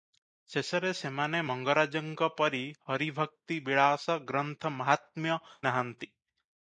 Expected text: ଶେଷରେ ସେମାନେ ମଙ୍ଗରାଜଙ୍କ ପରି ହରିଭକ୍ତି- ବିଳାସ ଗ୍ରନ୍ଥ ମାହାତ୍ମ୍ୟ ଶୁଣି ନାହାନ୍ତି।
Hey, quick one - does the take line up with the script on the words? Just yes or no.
no